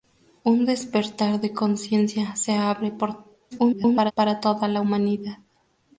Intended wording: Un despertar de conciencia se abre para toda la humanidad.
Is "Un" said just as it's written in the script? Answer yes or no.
yes